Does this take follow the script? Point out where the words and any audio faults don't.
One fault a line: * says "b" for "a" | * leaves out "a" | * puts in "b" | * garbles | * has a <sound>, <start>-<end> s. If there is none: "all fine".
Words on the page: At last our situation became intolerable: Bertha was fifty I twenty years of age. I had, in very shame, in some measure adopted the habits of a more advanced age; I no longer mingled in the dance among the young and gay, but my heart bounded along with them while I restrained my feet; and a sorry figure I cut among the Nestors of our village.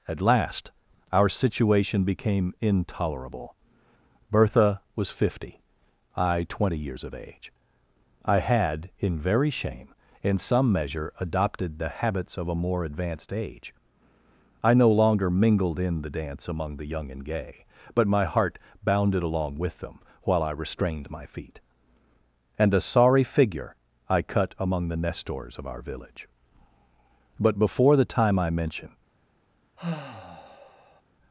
* puts in "But before the time I mention"
* has a sigh, 29.8-31.0 s